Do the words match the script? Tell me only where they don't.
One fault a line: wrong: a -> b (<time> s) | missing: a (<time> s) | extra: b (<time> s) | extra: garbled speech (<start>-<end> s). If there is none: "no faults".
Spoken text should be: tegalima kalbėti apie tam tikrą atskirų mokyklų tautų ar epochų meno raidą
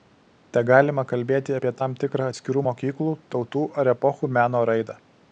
no faults